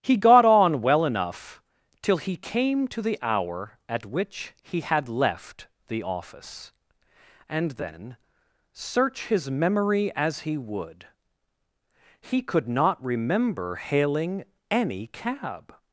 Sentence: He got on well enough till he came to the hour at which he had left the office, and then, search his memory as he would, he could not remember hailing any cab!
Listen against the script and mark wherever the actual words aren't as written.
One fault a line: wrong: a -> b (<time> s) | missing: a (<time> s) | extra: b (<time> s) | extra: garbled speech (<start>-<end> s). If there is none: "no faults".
no faults